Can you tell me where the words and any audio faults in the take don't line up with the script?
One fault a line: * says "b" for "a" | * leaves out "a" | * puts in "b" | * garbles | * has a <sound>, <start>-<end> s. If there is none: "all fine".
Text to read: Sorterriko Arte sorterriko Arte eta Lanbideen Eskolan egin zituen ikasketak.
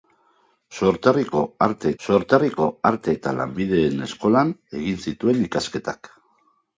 all fine